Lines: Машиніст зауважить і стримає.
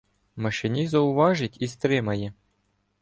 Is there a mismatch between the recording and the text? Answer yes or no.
no